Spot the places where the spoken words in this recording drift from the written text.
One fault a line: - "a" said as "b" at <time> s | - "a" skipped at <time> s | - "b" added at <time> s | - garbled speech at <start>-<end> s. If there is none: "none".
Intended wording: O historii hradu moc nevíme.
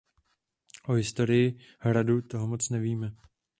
- "toho" added at 2.2 s